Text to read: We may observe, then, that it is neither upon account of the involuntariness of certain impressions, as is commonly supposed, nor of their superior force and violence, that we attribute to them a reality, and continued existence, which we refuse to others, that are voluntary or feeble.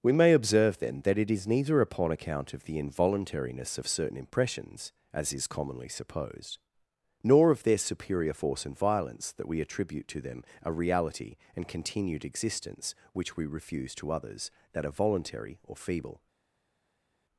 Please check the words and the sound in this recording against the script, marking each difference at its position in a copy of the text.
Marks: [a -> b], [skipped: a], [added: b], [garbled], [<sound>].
We may observe, then, that it is neither upon account of the involuntariness of certain impressions, as is commonly supposed, nor of their superior force and violence, that we attribute to them a reality, and continued existence, which we refuse to others, that are voluntary or feeble.